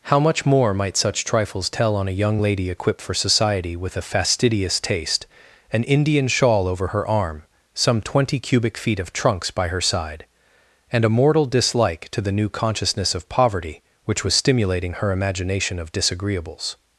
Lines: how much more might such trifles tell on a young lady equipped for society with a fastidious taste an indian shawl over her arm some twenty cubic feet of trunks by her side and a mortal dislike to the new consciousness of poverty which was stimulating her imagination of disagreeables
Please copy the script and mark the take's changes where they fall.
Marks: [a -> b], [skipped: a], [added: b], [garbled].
how much more might such trifles tell on a young lady equipped for society with a fastidious taste an indian shawl over her arm some twenty cubic feet of trunks by her side and a mortal dislike to the new consciousness of poverty which was stimulating her imagination of disagreeables